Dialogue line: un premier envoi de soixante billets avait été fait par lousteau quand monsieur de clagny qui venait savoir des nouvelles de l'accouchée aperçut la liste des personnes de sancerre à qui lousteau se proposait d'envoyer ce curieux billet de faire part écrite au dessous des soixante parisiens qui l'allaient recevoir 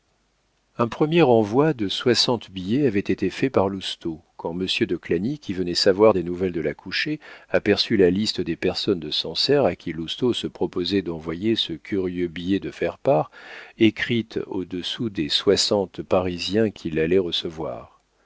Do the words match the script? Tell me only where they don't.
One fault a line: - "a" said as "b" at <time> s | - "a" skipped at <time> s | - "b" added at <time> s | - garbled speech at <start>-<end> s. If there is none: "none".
none